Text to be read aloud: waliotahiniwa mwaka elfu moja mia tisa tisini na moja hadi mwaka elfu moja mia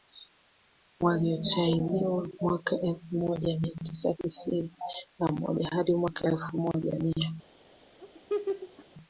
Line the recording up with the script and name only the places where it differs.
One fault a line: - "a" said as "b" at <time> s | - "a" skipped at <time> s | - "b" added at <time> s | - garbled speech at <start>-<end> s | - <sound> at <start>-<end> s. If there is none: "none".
- laugh at 8.0-8.9 s